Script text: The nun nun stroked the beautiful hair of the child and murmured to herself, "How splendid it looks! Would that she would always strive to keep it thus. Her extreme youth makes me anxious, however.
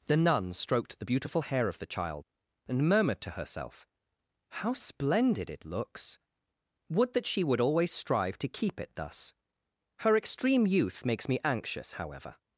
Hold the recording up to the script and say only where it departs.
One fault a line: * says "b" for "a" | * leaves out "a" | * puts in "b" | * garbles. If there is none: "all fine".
* leaves out "nun"